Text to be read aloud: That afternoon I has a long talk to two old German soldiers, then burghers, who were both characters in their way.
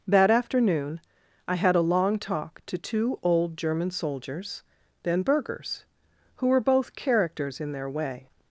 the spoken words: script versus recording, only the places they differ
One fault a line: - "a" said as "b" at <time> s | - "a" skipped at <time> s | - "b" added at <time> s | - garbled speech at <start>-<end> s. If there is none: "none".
- "has" said as "had" at 1.6 s